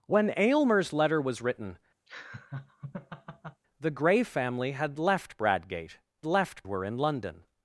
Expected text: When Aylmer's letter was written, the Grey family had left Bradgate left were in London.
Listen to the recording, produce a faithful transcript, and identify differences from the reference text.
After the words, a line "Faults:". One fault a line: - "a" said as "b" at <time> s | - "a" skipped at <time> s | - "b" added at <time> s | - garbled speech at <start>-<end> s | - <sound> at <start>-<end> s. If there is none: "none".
When Aylmer's letter was written, the Grey family had left Bradgate left were in London.
Faults:
- laugh at 2.1-3.6 s